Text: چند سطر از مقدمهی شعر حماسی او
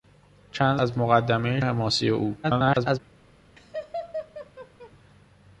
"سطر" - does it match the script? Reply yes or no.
no